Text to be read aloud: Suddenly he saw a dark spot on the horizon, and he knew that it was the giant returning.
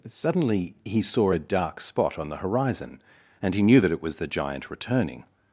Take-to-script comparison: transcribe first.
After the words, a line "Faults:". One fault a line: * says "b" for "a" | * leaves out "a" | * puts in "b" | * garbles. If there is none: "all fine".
Suddenly he saw a dark spot on the horizon, and he knew that it was the giant returning.
Faults:
all fine